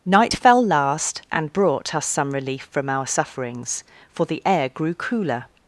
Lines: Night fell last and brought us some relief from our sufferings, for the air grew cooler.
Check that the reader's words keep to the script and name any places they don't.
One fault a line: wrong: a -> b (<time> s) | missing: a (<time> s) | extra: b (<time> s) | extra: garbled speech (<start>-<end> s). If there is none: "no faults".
no faults